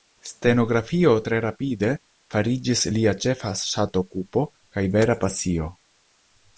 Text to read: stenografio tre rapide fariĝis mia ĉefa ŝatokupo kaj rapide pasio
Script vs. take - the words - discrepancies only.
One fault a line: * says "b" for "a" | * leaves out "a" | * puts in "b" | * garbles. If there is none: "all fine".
* says "lia" for "mia"
* says "vera" for "rapide"